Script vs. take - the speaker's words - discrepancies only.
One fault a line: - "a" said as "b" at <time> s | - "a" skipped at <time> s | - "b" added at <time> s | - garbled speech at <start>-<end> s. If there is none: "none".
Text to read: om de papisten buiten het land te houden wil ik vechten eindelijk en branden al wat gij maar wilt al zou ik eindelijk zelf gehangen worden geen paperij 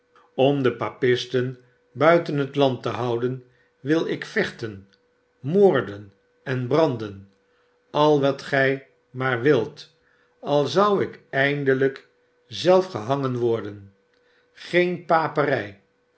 - "eindelijk" said as "moorden" at 5.4 s